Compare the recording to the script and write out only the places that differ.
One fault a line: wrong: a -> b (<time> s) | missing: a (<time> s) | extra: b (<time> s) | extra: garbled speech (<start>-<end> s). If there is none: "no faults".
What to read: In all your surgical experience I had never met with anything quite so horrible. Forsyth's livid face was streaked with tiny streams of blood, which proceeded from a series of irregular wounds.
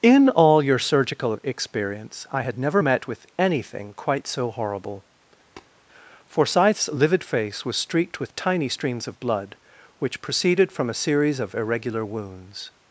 no faults